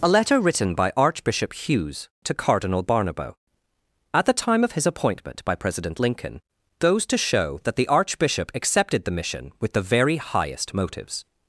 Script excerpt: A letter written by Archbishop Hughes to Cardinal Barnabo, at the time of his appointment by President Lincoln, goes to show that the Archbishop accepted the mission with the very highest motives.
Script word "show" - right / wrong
right